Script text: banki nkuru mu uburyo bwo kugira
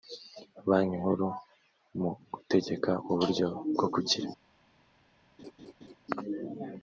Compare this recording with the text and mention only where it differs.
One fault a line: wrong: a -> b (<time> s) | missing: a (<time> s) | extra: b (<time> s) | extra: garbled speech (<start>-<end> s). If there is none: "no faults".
extra: gutegeka (2.3 s)